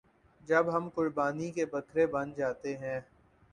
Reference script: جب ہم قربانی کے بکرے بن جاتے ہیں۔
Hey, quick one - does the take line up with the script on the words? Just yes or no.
yes